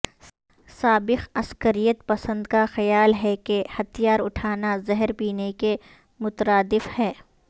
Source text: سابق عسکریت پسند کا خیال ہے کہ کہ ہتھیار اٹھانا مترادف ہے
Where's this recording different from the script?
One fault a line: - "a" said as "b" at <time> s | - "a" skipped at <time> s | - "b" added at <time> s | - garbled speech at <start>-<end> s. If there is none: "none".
- "کہ" skipped at 3.6 s
- "زہر پینے کے" added at 4.9 s